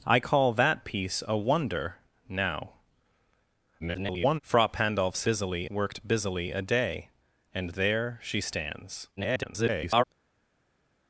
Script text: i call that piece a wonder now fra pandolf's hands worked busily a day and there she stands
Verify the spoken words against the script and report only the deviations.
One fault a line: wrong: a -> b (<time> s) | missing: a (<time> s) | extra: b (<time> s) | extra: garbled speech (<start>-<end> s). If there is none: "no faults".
extra: garbled speech (3.8-4.4 s)
wrong: hands -> busily (5.2 s)
extra: garbled speech (9.2-10.0 s)